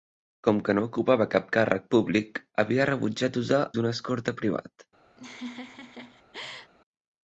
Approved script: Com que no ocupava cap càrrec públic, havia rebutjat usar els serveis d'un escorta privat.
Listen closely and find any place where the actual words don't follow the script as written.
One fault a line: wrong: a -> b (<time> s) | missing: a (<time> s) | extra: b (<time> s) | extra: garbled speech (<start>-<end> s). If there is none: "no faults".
missing: els serveis (3.6 s)